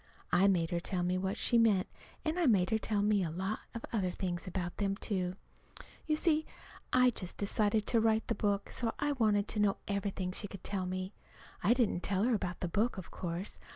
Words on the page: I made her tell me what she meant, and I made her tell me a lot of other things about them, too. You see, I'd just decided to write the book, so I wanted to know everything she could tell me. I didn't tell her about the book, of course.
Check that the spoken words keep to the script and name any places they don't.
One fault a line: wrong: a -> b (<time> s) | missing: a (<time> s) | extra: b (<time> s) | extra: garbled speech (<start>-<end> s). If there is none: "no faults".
no faults